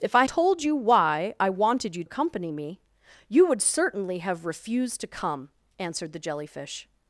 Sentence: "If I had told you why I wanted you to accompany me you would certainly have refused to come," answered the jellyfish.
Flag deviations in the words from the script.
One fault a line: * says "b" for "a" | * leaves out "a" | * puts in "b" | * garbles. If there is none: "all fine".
* leaves out "had"
* leaves out "to"